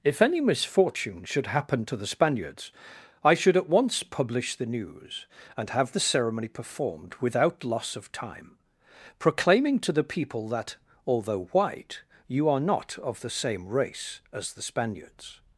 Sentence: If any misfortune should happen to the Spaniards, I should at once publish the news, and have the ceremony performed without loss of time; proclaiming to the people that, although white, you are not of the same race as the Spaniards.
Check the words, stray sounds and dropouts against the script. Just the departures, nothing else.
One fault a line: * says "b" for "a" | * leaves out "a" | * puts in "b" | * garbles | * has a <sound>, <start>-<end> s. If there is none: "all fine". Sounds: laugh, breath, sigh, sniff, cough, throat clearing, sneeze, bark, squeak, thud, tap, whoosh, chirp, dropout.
all fine